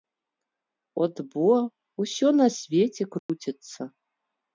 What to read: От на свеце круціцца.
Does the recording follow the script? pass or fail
fail